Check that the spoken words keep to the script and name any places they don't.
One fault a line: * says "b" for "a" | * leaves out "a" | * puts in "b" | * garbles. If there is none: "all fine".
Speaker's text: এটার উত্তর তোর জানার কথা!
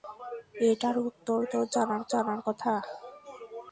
* puts in "জানার"